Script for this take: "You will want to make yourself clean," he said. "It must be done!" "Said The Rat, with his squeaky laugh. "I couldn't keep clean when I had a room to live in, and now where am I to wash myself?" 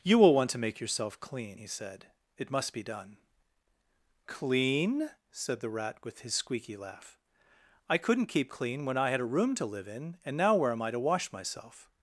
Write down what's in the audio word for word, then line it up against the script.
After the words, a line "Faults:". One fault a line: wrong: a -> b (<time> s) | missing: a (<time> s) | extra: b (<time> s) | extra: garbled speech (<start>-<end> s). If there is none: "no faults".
"You will want to make yourself clean," he said. "It must be done." "Clean!" said The Rat, with his squeaky laugh. "I couldn't keep clean when I had a room to live in, and now where am I to wash myself?"
Faults:
extra: Clean (4.3 s)